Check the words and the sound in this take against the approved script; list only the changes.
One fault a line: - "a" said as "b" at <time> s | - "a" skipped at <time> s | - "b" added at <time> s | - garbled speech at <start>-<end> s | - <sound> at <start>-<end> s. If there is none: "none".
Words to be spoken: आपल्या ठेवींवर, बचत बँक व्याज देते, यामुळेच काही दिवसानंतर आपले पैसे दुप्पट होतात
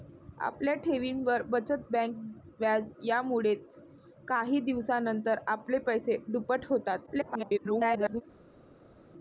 - "देते" skipped at 2.9 s
- garbled speech at 7.1-8.2 s